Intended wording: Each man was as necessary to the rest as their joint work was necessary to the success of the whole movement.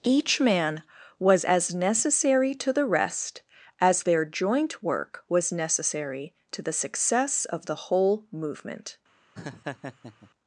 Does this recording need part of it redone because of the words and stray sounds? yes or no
yes